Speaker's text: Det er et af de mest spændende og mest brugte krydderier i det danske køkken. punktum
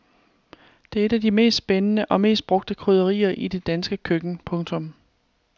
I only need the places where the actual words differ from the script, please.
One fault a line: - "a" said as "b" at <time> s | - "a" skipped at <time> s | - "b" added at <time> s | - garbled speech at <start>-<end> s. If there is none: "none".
none